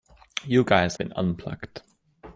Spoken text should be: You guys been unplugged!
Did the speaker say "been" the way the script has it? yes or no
yes